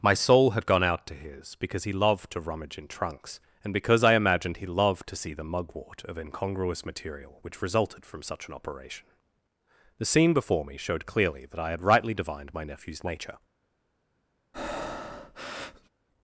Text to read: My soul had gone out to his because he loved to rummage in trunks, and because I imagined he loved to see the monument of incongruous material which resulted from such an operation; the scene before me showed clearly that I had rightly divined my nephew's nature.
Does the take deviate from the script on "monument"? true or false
true